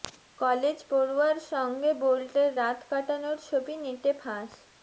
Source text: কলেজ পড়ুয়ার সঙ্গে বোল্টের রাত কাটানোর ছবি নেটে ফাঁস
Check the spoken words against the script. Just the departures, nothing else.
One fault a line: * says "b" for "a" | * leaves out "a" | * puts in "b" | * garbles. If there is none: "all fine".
all fine